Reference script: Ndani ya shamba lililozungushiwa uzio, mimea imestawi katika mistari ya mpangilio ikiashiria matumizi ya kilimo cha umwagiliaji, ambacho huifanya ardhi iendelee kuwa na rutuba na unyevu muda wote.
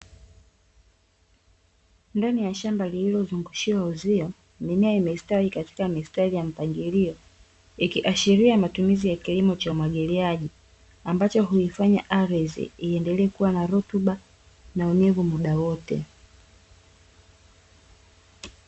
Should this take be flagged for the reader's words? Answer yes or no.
no